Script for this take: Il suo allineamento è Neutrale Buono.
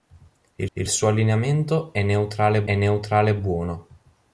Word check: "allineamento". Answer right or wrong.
right